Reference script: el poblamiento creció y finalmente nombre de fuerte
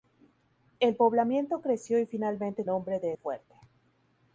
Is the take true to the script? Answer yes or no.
yes